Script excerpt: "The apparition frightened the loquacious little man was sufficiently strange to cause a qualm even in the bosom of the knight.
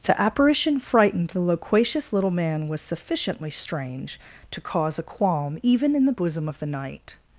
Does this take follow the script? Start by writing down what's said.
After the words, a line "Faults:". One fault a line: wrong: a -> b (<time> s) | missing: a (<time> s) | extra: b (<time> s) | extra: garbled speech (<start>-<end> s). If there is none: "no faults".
"The apparition frightened the loquacious little man was sufficiently strange to cause a qualm even in the bosom of the knight.
Faults:
no faults